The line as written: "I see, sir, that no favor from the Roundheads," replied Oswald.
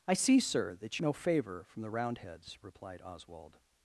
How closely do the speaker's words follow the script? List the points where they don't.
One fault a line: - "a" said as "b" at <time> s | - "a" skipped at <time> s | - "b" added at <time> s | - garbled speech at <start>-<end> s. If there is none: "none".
none